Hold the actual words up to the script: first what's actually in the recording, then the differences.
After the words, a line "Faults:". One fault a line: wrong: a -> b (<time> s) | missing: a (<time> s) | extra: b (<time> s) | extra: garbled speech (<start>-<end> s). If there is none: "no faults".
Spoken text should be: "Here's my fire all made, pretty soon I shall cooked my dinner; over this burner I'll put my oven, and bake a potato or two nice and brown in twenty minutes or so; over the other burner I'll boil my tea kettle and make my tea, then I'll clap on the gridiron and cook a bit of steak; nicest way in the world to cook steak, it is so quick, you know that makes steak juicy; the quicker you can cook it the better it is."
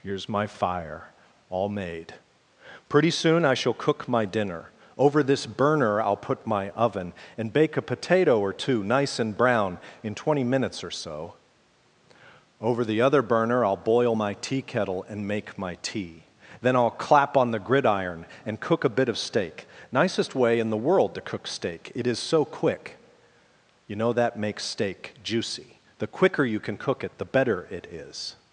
"Here's my fire all made, pretty soon I shall cook my dinner; over this burner I'll put my oven, and bake a potato or two nice and brown in twenty minutes or so; over the other burner I'll boil my tea kettle and make my tea, then I'll clap on the gridiron and cook a bit of steak; nicest way in the world to cook steak, it is so quick, you know that makes steak juicy; the quicker you can cook it the better it is."
Faults:
wrong: cooked -> cook (3.7 s)